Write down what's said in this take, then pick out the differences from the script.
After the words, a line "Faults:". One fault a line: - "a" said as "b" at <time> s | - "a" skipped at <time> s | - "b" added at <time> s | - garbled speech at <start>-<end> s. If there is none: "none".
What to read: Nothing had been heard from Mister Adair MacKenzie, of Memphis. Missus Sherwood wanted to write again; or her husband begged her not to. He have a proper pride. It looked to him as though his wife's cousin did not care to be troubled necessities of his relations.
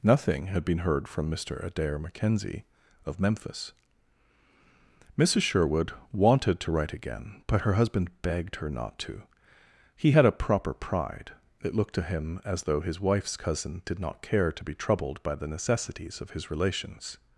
Nothing had been heard from Mister Adair MacKenzie, of Memphis. Missus Sherwood wanted to write again; but her husband begged her not to. He had a proper pride. It looked to him as though his wife's cousin did not care to be troubled by the necessities of his relations.
Faults:
- "or" said as "but" at 7.5 s
- "have" said as "had" at 10.1 s
- "by the" added at 15.2 s